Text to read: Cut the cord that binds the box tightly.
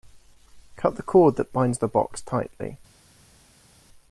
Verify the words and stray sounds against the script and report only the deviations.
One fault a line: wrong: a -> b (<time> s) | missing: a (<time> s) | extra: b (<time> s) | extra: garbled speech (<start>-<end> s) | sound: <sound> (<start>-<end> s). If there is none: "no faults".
no faults